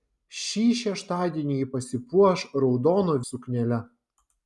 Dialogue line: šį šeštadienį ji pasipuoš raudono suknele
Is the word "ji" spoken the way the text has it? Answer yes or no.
yes